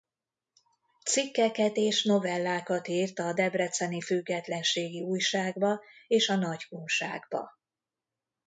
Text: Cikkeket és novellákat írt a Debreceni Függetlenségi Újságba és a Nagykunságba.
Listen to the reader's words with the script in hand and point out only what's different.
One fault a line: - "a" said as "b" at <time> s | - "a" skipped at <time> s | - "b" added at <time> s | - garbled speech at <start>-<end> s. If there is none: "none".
none